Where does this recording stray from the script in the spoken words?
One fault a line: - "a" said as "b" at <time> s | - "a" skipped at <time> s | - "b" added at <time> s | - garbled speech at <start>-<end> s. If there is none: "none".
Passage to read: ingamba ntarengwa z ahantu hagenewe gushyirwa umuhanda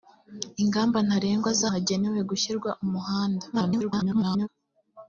- "ahantu" skipped at 1.6 s
- garbled speech at 3.5-4.5 s